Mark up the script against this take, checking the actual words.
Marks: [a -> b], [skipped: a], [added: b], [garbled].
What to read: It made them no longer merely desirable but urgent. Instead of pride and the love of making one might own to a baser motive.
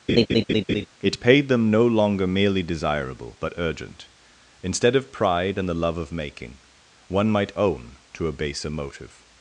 It [made -> paid] them no longer merely desirable but urgent. Instead of pride and the love of making one might own to a baser motive.